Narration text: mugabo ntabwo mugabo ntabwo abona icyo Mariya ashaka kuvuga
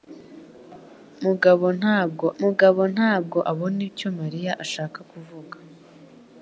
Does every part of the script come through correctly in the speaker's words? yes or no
yes